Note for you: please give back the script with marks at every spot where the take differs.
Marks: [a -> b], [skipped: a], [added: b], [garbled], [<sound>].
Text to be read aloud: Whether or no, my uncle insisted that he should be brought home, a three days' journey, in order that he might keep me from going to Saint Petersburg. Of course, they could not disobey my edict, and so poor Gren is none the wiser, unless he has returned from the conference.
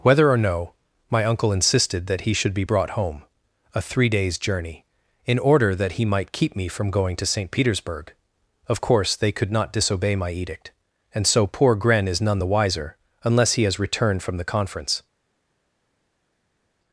Whether or no, my uncle insisted that he should be brought home, a three days' journey, in order that he might keep me from going to Saint Petersburg. Of course, they could not disobey my edict, and so poor Gren is none the wiser, unless he has returned from the conference.